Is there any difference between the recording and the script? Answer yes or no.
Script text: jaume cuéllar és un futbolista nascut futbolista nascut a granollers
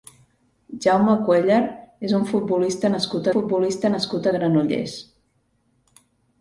no